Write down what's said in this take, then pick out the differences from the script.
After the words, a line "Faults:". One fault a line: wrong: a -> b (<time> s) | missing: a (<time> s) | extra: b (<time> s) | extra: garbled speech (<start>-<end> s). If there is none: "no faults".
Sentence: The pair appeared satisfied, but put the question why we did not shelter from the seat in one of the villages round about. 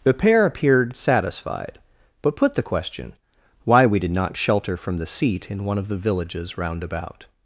The pair appeared satisfied, but put the question why we did not shelter from the seat in one of the villages round about.
Faults:
no faults